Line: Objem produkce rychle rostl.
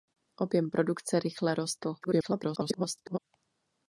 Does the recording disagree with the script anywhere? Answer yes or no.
yes